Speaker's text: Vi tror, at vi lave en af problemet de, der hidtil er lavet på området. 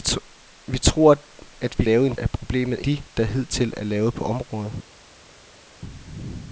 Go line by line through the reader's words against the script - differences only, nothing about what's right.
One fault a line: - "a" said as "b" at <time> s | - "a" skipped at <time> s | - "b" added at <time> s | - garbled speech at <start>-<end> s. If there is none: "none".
none